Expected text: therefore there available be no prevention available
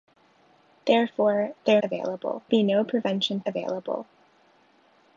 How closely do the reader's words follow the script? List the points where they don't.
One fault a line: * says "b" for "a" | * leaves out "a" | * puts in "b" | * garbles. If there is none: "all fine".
all fine